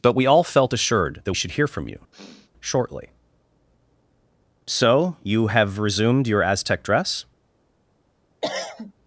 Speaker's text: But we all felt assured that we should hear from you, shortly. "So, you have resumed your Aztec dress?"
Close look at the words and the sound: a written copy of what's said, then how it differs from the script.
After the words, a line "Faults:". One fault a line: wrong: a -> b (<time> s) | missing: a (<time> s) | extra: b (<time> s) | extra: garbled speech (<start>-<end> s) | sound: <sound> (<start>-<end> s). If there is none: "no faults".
But we all felt assured that should hear from you, shortly. "So, you have resumed your Aztec dress?"
Faults:
missing: we (1.3 s)
sound: sniff (2.1-2.5 s)
sound: cough (8.4-8.9 s)